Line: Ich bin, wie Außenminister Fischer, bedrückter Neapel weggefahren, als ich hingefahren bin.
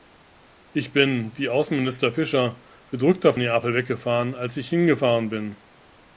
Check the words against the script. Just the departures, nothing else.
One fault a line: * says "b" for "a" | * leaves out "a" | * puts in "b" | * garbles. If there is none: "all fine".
all fine